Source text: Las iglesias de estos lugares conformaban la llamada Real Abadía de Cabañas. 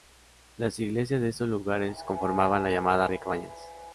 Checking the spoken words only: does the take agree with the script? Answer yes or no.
no